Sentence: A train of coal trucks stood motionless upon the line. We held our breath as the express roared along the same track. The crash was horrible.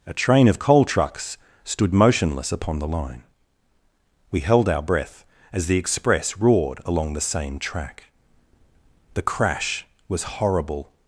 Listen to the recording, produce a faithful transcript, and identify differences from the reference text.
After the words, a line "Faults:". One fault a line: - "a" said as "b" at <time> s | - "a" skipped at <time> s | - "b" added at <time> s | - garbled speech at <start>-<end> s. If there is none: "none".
A train of coal trucks stood motionless upon the line. We held our breath as the express roared along the same track. The crash was horrible.
Faults:
none